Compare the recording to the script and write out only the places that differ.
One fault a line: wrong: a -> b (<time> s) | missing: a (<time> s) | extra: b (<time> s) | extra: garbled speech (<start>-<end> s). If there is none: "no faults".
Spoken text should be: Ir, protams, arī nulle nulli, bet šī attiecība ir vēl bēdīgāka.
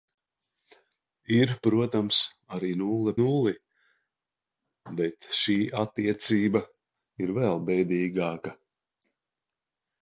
no faults